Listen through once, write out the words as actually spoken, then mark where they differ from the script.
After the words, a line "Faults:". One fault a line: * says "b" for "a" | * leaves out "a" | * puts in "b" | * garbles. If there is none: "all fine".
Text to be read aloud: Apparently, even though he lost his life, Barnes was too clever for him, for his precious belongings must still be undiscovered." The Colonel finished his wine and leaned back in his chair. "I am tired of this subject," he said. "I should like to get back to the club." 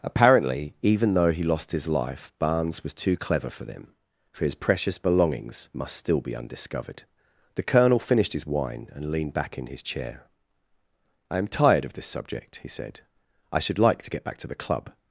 Apparently, even though he lost his life, Barnes was too clever for them, for his precious belongings must still be undiscovered." The Colonel finished his wine and leaned back in his chair. "I am tired of this subject," he said. "I should like to get back to the club."
Faults:
* says "them" for "him"